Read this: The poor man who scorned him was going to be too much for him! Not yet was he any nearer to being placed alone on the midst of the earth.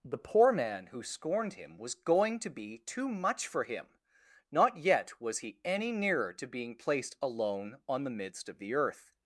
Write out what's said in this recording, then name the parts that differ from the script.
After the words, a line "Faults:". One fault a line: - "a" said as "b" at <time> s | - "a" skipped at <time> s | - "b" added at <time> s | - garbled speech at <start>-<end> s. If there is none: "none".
The poor man who scorned him was going to be too much for him! Not yet was he any nearer to being placed alone on the midst of the earth.
Faults:
none